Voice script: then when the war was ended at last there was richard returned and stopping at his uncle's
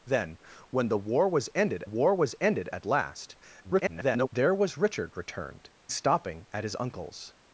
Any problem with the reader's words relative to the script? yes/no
yes